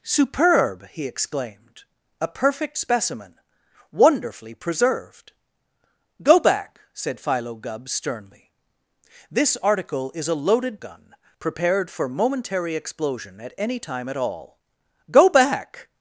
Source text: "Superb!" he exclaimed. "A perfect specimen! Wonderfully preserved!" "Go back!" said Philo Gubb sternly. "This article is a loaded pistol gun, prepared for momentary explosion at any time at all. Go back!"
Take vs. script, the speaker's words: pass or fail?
fail